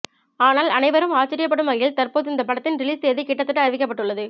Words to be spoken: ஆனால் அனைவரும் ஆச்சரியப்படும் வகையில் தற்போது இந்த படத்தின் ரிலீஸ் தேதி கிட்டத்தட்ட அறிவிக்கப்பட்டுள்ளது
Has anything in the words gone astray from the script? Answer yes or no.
no